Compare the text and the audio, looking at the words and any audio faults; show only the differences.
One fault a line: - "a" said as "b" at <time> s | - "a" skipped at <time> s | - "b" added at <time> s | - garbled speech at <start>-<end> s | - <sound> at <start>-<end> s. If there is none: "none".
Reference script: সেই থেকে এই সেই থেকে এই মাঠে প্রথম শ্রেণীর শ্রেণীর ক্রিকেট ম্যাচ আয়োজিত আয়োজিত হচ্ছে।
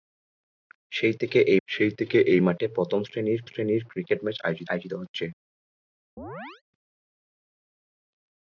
- chirp at 6.2-6.6 s